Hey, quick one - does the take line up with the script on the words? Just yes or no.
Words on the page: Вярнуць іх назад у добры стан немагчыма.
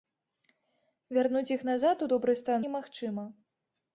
yes